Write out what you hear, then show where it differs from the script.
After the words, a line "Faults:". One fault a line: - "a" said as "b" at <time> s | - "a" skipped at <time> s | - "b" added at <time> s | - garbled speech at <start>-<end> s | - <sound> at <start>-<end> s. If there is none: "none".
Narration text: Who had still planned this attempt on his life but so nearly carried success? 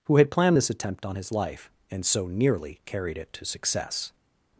Who had planned this attempt on his life and so nearly carried it to success?
Faults:
- "still" skipped at 0.3 s
- "but" said as "and" at 1.9 s
- "it to" added at 3.2 s